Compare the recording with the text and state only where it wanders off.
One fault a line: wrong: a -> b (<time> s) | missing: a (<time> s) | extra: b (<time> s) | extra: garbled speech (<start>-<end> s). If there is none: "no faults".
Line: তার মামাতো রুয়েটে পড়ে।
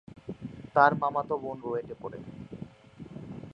extra: বোন (1.4 s)